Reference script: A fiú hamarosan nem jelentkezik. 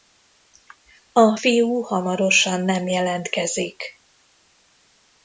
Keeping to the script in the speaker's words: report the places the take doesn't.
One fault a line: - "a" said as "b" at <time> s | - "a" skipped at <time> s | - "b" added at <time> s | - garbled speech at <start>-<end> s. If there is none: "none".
none